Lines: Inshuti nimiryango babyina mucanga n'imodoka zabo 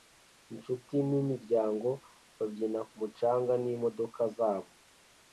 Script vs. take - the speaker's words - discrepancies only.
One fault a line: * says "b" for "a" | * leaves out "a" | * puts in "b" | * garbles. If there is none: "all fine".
all fine